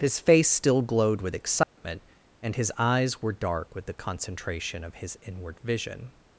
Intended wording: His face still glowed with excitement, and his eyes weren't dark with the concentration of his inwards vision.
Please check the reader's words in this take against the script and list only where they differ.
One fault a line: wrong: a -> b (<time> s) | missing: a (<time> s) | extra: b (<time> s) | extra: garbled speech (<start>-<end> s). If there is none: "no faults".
wrong: weren't -> were (3.2 s)
wrong: inwards -> inward (5.2 s)